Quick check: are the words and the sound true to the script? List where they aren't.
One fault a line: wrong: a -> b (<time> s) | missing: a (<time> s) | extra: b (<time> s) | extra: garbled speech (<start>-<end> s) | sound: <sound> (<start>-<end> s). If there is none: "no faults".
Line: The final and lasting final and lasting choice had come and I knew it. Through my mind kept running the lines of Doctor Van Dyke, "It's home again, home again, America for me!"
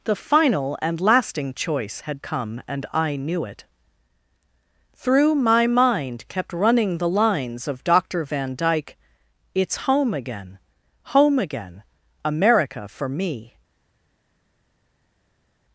missing: final and lasting (1.5 s)